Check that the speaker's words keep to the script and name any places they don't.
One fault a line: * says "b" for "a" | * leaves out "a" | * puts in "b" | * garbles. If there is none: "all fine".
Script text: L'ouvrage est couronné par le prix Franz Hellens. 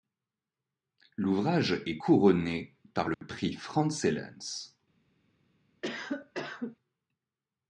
all fine